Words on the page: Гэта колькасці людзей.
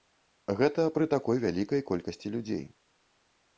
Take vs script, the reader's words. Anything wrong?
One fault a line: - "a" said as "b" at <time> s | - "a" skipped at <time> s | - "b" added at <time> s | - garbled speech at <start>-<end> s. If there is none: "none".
- "пры такой вялікай" added at 0.9 s